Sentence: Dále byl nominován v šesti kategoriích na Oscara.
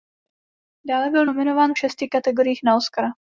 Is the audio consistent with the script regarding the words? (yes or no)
yes